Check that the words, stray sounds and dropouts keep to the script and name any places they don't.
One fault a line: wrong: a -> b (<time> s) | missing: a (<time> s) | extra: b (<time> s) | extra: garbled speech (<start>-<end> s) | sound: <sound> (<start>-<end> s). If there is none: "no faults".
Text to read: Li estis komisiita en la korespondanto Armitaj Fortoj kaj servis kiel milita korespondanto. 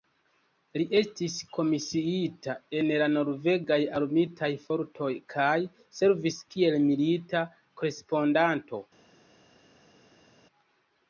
wrong: korespondanto -> norvegaj (3.2 s)